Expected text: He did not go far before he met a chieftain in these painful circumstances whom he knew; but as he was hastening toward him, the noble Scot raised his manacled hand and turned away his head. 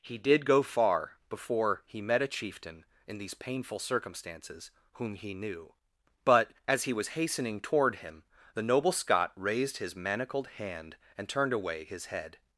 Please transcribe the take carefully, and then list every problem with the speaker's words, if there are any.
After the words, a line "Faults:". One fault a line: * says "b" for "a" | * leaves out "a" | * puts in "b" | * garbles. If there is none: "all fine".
He did go far before he met a chieftain in these painful circumstances whom he knew; but as he was hastening toward him, the noble Scot raised his manacled hand and turned away his head.
Faults:
* leaves out "not"